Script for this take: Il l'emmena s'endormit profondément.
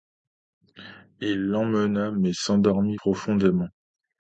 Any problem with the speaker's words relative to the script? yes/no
yes